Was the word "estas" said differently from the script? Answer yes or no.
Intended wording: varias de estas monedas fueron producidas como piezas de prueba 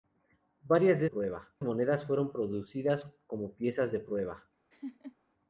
yes